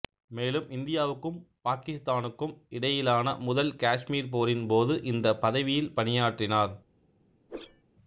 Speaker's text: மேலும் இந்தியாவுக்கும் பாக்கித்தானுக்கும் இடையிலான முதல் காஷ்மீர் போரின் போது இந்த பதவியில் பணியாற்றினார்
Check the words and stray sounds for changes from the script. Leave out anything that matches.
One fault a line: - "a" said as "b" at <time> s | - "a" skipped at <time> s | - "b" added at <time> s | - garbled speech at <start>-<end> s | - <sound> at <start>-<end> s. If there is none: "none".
- whoosh at 7.5-7.8 s